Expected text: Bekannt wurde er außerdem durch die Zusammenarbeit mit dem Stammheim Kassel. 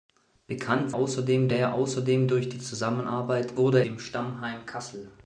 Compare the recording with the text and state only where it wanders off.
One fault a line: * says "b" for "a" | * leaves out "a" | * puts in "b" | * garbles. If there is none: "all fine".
* says "außerdem" for "wurde"
* says "wurde" for "mit"